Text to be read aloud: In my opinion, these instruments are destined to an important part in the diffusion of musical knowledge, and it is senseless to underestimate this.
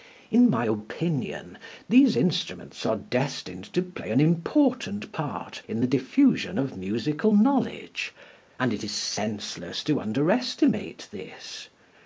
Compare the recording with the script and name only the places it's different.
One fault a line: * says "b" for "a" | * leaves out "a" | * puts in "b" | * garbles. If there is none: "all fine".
* puts in "play"